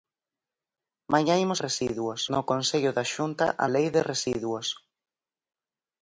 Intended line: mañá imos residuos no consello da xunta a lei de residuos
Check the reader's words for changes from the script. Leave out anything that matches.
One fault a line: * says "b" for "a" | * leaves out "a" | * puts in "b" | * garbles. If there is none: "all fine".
all fine